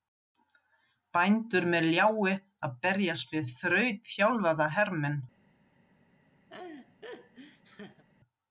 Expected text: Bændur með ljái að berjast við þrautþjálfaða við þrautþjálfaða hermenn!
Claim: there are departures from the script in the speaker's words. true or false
true